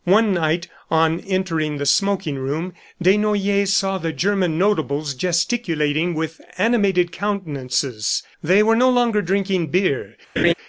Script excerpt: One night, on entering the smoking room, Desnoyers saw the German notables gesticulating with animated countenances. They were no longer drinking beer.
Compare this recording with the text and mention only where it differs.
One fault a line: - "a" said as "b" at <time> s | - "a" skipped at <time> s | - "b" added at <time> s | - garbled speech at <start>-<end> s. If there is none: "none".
none